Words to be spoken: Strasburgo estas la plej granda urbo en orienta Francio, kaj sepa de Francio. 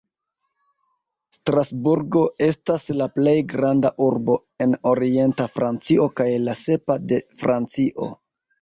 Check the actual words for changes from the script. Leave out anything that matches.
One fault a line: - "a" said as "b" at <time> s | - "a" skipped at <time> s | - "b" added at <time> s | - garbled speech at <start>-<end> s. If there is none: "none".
- "la" added at 6.5 s